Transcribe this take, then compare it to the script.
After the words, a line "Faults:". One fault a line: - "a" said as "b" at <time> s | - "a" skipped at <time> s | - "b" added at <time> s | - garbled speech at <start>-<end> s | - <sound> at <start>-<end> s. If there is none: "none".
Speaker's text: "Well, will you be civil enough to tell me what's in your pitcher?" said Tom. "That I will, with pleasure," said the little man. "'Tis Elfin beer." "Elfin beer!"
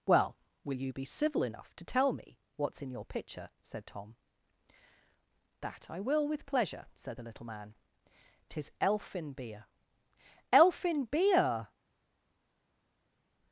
"Well, will you be civil enough to tell me what's in your pitcher?" said Tom. "That I will, with pleasure," said the little man. "'Tis Elfin beer." "Elfin beer!"
Faults:
none